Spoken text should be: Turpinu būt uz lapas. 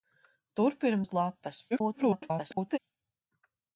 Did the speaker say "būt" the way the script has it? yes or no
no